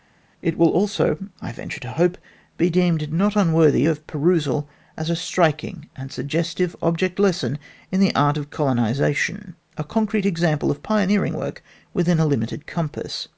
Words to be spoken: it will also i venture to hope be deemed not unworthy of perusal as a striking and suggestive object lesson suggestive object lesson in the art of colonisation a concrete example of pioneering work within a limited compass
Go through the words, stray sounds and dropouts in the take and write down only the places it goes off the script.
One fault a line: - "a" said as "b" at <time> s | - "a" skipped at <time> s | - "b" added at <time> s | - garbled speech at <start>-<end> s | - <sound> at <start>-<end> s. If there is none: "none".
- "suggestive object lesson" skipped at 7.6 s